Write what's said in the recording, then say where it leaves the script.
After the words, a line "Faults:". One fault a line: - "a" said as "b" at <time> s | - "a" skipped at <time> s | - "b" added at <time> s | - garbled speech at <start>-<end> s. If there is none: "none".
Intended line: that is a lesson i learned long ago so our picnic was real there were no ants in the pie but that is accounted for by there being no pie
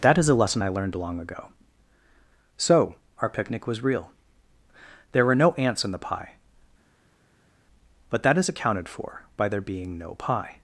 that is a lesson i learned long ago so our picnic was real there were no ants in the pie but that is accounted for by there being no pie
Faults:
none